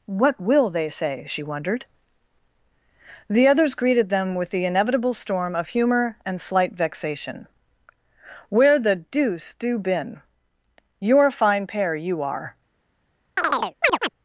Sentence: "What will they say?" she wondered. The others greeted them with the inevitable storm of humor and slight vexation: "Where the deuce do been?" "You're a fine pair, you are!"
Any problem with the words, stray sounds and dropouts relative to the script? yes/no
yes